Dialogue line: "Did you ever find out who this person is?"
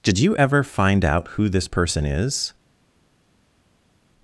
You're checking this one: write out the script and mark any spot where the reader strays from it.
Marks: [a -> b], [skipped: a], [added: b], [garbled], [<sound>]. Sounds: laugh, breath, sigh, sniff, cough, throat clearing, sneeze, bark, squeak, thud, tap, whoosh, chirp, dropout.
"Did you ever find out who this person is?"